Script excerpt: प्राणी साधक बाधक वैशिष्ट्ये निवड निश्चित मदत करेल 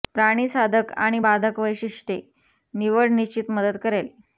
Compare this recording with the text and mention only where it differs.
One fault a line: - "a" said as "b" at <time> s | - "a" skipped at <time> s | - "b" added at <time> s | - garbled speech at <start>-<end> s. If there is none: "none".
- "आणि" added at 1.0 s